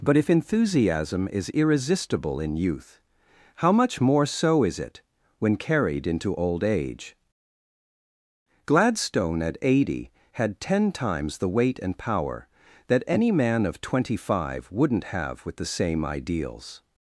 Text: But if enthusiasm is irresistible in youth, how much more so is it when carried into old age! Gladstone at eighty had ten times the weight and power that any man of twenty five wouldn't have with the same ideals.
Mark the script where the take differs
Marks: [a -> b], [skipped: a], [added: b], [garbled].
But if enthusiasm is irresistible in youth, how much more so is it when carried into old age! Gladstone at eighty had ten times the weight and power that any man of twenty five wouldn't have with the same ideals.